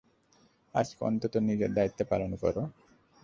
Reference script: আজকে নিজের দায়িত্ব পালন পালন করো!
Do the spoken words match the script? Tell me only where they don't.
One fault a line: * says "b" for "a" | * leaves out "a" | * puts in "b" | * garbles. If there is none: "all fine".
* puts in "অন্তত"
* leaves out "পালন"